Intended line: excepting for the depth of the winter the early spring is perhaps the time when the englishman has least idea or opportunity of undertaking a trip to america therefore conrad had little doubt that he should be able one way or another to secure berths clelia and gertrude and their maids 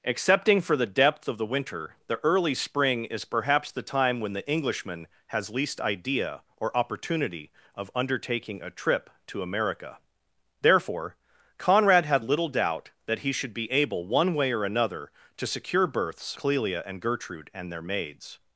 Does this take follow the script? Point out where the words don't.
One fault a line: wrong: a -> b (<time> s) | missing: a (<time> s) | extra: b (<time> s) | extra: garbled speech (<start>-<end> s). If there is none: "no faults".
no faults